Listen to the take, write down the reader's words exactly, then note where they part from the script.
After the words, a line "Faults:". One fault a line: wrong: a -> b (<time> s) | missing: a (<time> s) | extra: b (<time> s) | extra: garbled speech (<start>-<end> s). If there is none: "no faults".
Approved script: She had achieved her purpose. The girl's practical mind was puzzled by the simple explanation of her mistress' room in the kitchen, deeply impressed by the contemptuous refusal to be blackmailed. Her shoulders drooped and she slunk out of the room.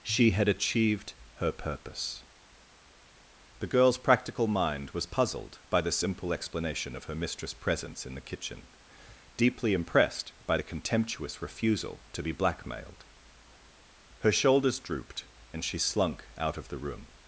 She had achieved her purpose. The girl's practical mind was puzzled by the simple explanation of her mistress' presence in the kitchen, deeply impressed by the contemptuous refusal to be blackmailed. Her shoulders drooped and she slunk out of the room.
Faults:
wrong: room -> presence (7.5 s)